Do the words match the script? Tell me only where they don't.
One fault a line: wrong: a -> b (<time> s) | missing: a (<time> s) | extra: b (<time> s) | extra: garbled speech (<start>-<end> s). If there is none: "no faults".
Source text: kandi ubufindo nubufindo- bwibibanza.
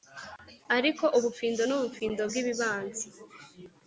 wrong: kandi -> ariko (0.8 s)